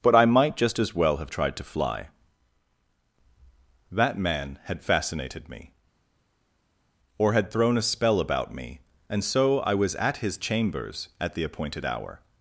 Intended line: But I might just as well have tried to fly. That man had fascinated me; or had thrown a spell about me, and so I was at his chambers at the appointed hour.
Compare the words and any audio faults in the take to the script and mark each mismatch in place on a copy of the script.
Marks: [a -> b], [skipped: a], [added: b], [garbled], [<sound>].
But I might just as well have tried to fly. That man had fascinated me; or had thrown a spell about me, and so I was at his chambers at the appointed hour.